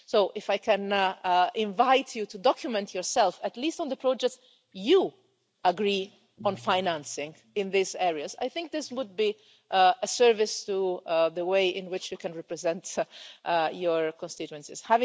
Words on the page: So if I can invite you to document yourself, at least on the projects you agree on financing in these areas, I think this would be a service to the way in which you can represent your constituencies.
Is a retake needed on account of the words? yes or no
no